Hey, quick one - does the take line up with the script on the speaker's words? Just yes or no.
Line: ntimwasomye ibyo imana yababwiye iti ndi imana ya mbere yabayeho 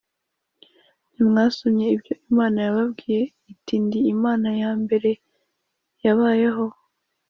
yes